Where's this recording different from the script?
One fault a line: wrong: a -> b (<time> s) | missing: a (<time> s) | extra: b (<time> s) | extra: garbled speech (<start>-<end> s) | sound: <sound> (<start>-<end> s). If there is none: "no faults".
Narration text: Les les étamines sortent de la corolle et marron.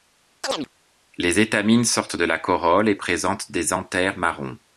sound: chirp (0.4-0.7 s)
missing: les (1.4 s)
extra: présentent des anthères (2.9 s)